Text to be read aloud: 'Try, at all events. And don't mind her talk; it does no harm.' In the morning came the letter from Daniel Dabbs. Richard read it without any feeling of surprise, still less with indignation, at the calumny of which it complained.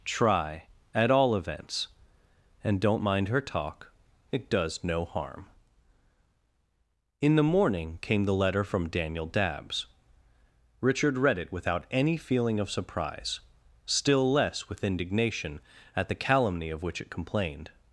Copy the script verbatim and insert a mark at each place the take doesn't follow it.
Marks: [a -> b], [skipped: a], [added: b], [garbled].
'Try, at all events. And don't mind her talk; it does no harm.' In the morning came the letter from Daniel Dabbs. Richard read it without any feeling of surprise, still less with indignation, at the calumny of which it complained.